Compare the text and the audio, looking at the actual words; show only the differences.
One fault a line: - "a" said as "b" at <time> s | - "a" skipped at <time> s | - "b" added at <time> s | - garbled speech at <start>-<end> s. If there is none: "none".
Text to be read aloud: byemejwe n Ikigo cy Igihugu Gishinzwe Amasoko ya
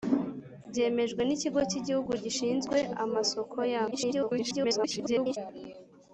- garbled speech at 3.9-5.4 s